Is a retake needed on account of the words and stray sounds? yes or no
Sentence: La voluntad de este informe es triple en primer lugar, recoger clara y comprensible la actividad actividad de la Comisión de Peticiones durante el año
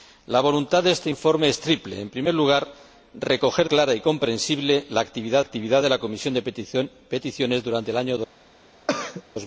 yes